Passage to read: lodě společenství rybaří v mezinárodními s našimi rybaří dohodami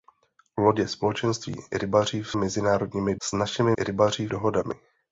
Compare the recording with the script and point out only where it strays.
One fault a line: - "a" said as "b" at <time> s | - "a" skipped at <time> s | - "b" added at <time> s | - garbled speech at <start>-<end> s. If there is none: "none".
none